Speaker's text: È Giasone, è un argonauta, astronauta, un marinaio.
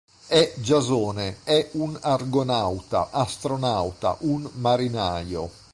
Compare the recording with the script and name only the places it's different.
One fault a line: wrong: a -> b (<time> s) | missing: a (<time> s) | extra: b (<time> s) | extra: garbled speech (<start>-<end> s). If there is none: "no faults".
no faults